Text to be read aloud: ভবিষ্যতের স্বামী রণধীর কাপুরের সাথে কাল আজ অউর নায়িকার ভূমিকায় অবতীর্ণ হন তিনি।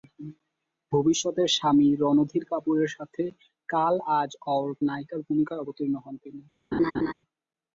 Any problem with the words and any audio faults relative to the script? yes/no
yes